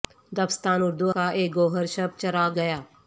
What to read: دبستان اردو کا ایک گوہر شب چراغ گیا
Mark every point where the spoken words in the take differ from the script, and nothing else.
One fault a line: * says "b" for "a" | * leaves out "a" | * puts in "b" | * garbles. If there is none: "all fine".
all fine